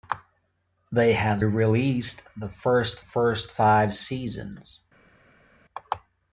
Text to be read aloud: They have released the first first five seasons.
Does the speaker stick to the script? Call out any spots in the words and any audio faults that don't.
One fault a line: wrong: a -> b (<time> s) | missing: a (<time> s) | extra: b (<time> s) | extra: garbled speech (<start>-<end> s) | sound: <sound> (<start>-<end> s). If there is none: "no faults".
no faults